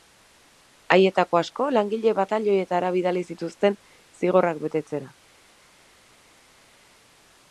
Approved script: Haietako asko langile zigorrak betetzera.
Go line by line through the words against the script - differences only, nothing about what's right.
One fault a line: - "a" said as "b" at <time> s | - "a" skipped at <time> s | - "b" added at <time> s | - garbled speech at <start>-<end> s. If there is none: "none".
- "batailoietara bidali zituzten" added at 2.2 s